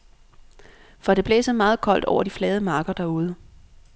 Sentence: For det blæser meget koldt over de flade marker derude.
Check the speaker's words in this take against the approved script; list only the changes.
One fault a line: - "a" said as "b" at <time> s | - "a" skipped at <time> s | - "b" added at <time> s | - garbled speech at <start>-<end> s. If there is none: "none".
none